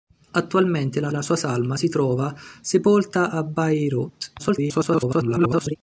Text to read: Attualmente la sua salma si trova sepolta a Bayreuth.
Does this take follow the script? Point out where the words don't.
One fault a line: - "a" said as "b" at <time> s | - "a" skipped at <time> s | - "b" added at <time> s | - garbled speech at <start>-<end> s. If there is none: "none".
- "la" added at 1.1 s
- garbled speech at 4.4-5.8 s